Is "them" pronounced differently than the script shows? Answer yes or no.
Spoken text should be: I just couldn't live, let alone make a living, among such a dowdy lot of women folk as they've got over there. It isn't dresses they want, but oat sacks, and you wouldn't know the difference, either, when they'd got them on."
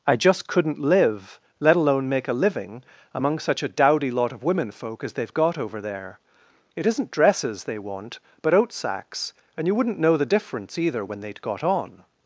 yes